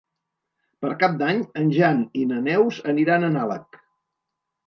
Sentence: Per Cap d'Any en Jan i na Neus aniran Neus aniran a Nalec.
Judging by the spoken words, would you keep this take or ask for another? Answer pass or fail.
fail